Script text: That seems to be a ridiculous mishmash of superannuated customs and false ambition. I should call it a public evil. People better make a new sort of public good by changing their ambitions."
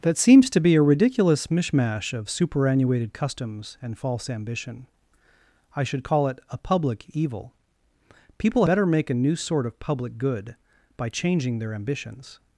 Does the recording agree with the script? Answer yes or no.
yes